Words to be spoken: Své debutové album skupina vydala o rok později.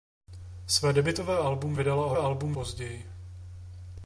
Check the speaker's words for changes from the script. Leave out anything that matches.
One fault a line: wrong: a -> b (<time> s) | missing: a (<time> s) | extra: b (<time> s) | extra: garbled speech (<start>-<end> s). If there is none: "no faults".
missing: skupina (1.8 s)
wrong: rok -> album (2.2 s)